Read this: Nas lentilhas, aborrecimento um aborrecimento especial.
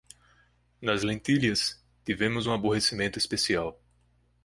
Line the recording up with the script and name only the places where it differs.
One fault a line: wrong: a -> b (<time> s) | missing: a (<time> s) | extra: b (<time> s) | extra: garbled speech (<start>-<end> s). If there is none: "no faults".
wrong: aborrecimento -> tivemos (2.0 s)